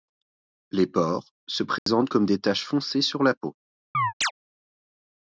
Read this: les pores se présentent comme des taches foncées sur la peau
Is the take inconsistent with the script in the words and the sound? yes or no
yes